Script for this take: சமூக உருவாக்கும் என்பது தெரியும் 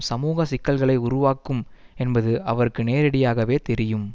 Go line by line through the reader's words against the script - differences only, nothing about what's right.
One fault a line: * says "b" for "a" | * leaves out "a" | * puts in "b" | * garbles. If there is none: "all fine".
* puts in "சிக்கல்களை"
* puts in "அவருக்கு நேரடியாகவே"